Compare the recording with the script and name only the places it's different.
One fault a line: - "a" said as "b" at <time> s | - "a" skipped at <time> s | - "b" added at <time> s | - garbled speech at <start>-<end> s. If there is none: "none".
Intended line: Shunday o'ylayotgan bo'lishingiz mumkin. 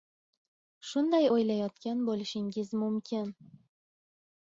none